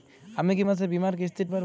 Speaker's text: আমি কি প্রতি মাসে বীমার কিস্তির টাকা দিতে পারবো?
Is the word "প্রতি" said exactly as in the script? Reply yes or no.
no